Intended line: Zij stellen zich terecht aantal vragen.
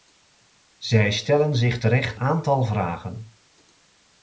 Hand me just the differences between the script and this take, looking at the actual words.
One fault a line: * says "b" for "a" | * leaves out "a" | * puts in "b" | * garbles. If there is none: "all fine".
all fine